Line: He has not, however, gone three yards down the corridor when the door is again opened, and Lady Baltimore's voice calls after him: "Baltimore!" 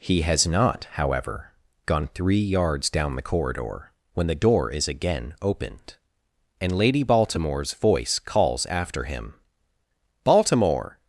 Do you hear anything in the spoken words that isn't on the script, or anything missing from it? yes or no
no